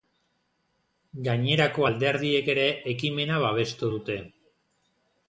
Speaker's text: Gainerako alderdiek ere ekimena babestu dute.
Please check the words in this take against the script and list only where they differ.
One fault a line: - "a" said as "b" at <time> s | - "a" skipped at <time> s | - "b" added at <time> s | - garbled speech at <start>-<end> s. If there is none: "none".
none